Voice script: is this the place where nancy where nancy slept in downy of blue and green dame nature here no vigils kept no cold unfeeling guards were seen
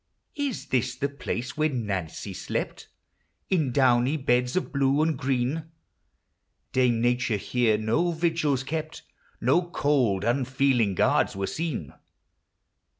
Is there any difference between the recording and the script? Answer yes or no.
yes